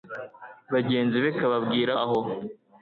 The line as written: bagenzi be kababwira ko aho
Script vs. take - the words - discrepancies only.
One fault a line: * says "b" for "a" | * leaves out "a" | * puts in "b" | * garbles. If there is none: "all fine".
* leaves out "ko"